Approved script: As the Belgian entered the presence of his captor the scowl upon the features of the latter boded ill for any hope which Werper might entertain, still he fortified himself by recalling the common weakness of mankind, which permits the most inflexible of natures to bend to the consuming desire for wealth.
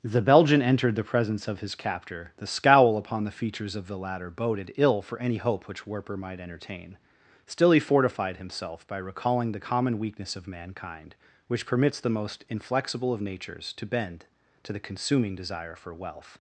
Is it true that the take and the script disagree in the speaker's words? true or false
true